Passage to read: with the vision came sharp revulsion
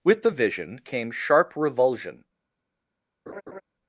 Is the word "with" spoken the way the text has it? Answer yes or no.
yes